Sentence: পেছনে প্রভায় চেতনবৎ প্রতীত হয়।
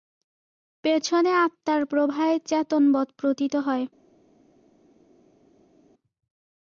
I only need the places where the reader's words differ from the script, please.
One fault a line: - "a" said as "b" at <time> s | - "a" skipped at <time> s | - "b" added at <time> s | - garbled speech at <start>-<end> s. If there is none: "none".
- "আত্মার" added at 1.4 s